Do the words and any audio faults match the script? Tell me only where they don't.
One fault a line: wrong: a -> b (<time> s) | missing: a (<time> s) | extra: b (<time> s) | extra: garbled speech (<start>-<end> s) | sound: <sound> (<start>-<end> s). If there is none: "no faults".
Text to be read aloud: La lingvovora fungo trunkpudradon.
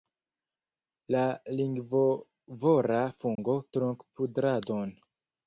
sound: dropout (3.4-3.4 s)